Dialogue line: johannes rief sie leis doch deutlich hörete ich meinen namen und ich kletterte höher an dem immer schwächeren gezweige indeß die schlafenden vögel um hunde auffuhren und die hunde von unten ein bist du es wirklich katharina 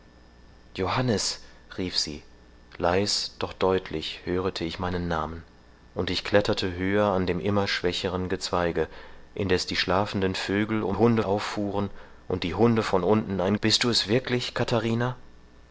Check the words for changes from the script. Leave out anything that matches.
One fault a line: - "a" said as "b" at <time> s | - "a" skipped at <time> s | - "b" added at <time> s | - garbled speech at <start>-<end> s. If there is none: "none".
none